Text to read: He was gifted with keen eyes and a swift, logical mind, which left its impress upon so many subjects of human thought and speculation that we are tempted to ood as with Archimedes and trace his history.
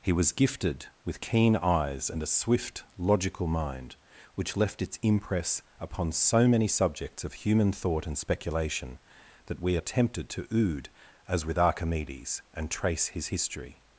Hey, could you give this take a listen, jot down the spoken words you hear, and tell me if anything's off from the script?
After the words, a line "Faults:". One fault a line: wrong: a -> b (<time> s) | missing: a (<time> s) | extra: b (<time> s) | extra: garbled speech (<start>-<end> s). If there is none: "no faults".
He was gifted with keen eyes and a swift, logical mind, which left its impress upon so many subjects of human thought and speculation that we are tempted to ood as with Archimedes and trace his history.
Faults:
no faults